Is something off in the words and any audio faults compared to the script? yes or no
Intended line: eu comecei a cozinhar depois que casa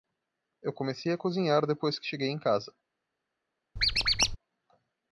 yes